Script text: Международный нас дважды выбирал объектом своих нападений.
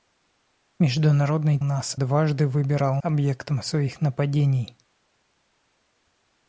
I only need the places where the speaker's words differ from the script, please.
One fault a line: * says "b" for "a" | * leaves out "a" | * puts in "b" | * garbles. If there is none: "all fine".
all fine